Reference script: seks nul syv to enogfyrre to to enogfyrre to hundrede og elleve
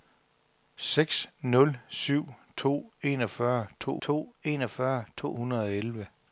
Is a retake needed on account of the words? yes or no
no